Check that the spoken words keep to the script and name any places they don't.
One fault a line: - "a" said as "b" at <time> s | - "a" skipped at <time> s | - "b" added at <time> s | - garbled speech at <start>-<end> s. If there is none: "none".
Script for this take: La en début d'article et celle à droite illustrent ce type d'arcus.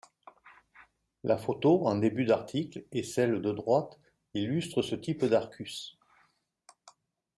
- "photo" added at 1.4 s
- "à" said as "de" at 3.4 s